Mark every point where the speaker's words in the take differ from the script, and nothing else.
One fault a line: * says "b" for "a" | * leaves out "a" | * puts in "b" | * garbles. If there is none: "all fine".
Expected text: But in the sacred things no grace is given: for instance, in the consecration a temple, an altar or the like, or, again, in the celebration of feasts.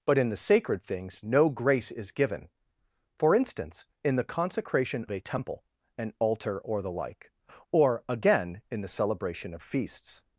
all fine